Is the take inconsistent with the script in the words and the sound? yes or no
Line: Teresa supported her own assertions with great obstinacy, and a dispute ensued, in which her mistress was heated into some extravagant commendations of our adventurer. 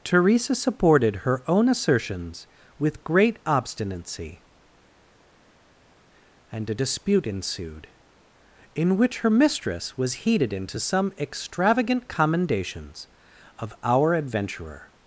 no